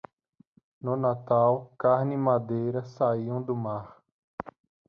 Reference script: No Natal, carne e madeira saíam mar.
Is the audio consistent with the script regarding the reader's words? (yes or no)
no